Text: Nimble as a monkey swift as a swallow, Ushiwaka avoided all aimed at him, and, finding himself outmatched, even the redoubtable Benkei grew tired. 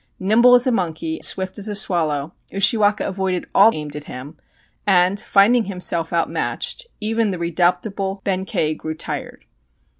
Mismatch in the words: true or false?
false